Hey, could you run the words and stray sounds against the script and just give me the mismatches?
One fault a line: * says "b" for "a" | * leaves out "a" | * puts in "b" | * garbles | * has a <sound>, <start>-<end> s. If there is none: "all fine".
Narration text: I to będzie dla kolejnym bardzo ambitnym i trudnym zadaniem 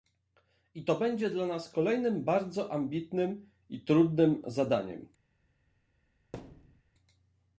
* puts in "nas"
* has a thud, 6.3-6.8 s